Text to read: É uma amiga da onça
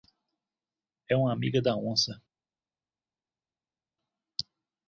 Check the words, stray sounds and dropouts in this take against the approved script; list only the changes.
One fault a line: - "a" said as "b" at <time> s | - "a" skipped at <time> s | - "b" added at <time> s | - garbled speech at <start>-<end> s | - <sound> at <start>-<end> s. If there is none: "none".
none